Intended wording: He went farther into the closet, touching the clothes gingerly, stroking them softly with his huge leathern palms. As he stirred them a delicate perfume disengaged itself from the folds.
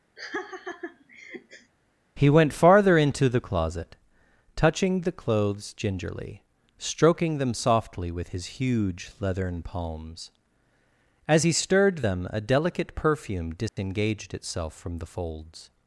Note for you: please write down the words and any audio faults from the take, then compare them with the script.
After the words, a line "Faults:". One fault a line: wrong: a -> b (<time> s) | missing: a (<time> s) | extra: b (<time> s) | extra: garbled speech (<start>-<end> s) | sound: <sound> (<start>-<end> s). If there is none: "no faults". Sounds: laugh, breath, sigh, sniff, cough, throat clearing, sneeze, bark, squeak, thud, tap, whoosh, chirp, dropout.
He went farther into the closet, touching the clothes gingerly, stroking them softly with his huge leathern palms. As he stirred them a delicate perfume disengaged itself from the folds.
Faults:
sound: laugh (0.2-1.7 s)
sound: dropout (13.7-13.8 s)